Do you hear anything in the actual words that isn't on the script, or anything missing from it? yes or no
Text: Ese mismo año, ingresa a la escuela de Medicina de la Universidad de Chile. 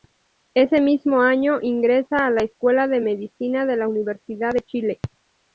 no